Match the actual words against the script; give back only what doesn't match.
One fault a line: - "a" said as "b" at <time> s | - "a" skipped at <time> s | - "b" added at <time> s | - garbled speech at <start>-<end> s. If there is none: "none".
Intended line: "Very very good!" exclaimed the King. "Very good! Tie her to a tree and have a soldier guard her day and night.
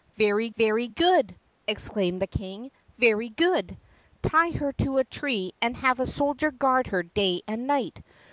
none